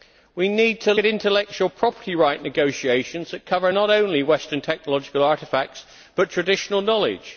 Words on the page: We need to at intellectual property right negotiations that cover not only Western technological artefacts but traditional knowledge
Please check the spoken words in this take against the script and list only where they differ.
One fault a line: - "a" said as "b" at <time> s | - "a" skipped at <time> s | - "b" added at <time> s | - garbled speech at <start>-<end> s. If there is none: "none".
none